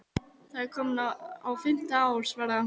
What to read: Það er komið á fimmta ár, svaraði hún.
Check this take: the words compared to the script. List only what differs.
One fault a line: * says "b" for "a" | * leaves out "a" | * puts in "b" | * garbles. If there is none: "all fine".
all fine